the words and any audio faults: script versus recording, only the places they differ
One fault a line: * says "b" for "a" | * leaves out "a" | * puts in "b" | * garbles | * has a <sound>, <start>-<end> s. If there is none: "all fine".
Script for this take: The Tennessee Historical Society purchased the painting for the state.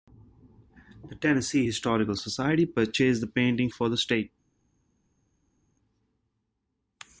all fine